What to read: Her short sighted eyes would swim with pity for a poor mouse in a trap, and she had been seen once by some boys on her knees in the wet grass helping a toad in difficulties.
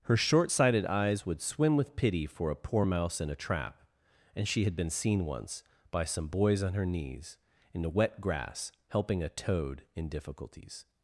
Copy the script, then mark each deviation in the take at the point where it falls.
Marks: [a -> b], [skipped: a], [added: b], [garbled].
Her short sighted eyes would swim with pity for a poor mouse in a trap, and she had been seen once by some boys on her knees in the wet grass helping a toad in difficulties.